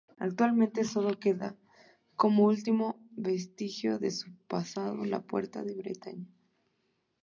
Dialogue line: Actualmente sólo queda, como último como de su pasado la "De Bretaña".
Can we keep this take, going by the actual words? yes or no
no